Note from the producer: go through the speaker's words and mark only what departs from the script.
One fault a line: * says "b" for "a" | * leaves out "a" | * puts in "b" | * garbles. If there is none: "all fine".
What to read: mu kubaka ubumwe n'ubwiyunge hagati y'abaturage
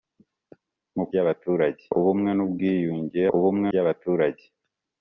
* says "y'abaturage" for "kubaka"
* says "ubumwe" for "hagati"